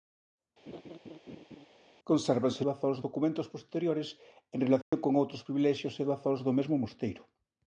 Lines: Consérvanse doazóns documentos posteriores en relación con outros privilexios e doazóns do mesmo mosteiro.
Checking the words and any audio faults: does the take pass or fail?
fail